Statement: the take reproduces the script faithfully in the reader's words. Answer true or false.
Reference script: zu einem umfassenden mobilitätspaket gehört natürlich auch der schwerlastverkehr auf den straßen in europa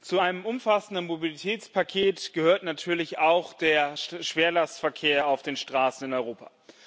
true